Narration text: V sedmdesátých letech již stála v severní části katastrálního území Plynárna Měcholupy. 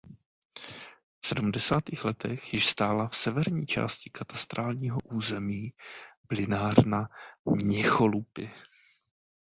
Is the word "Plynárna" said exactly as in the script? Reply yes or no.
yes